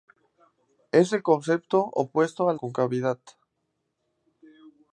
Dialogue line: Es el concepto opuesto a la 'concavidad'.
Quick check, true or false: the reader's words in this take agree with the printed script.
false